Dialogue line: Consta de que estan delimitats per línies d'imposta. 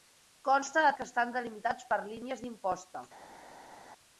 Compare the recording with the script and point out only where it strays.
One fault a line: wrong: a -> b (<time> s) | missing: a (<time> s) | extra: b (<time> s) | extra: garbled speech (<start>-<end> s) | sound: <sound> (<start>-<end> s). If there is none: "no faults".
no faults